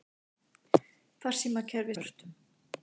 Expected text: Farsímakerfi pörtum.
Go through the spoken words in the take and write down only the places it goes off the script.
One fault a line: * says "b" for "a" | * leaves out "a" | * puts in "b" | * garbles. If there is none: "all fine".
all fine